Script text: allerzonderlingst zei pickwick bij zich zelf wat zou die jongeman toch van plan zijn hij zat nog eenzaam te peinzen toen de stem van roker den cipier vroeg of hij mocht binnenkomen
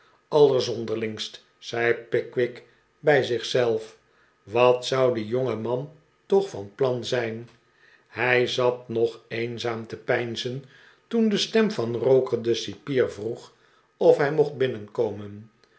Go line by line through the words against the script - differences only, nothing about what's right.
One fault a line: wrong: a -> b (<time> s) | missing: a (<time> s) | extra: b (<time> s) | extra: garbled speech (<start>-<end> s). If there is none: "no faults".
no faults